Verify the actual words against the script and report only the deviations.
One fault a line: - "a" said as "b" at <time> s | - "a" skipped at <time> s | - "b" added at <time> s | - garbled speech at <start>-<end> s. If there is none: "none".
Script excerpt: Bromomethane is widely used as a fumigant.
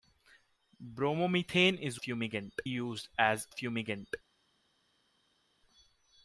- "widely" said as "fumigant" at 1.9 s
- "a" skipped at 3.5 s